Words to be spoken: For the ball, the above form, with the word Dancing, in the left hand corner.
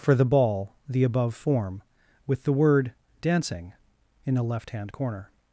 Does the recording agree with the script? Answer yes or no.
yes